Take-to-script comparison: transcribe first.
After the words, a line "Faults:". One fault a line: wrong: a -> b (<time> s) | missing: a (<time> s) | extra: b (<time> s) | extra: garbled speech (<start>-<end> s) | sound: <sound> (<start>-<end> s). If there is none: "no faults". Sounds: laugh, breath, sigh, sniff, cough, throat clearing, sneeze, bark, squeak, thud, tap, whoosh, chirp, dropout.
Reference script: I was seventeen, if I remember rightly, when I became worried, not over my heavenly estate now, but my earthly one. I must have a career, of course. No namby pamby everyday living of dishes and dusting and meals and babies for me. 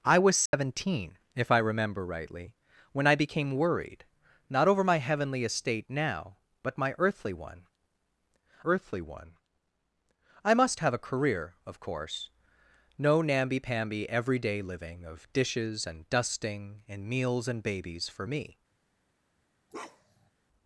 I was seventeen, if I remember rightly, when I became worried, not over my heavenly estate now, but my earthly one earthly one. I must have a career, of course. No namby pamby everyday living of dishes and dusting and meals and babies for me.
Faults:
sound: dropout (0.5-0.5 s)
extra: earthly one (8.6 s)
sound: bark (19.7-20.3 s)